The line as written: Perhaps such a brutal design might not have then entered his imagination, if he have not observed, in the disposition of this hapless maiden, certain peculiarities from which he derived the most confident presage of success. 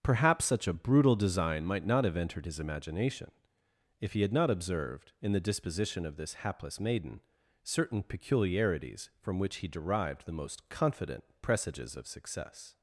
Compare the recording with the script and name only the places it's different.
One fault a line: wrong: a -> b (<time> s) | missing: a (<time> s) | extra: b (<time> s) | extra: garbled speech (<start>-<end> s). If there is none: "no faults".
missing: then (2.2 s)
wrong: have -> had (4.2 s)
wrong: presage -> presages (11.4 s)